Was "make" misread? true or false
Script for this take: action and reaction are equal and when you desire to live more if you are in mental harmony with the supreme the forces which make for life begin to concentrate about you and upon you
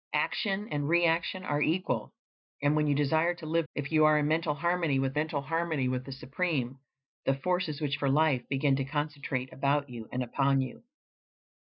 true